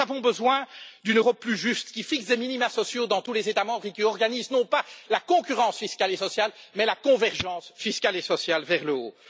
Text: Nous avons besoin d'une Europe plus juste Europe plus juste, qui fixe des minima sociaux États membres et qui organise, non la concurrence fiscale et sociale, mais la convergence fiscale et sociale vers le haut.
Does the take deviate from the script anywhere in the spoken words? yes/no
yes